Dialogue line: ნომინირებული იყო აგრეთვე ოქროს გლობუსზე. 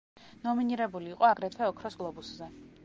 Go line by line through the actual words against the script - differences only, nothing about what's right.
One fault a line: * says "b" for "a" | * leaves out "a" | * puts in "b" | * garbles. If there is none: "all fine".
all fine